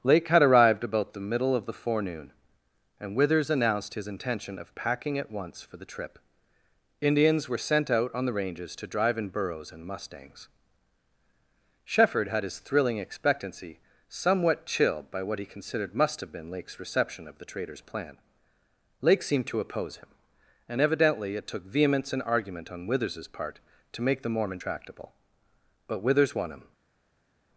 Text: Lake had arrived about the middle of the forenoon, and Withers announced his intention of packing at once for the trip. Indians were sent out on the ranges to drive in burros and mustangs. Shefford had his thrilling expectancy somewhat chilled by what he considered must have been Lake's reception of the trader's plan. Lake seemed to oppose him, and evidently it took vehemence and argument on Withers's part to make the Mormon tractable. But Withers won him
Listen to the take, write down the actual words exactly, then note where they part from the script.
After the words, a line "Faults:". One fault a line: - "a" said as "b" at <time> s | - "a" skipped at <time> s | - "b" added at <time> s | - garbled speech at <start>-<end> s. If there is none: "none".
Lake had arrived about the middle of the forenoon, and Withers announced his intention of packing at once for the trip. Indians were sent out on the ranges to drive in burros and mustangs. Shefford had his thrilling expectancy somewhat chilled by what he considered must have been Lake's reception of the trader's plan. Lake seemed to oppose him, and evidently it took vehemence and argument on Withers's part to make the Mormon tractable. But Withers won him
Faults:
none